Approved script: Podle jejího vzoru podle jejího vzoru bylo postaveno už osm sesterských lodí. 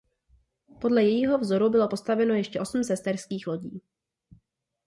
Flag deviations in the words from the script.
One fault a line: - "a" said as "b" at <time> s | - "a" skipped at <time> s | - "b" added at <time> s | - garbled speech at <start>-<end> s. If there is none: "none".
- "podle jejího vzoru" skipped at 1.7 s
- "už" said as "ještě" at 2.3 s